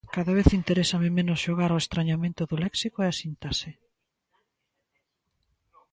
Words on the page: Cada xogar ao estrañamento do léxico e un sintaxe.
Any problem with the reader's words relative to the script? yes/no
yes